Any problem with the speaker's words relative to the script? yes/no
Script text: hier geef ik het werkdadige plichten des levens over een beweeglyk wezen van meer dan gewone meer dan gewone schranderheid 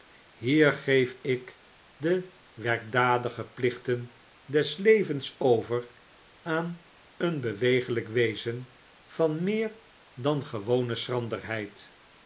yes